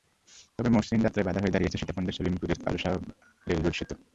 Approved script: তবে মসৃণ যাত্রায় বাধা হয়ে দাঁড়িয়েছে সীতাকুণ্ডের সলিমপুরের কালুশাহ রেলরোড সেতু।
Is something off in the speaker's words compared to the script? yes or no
no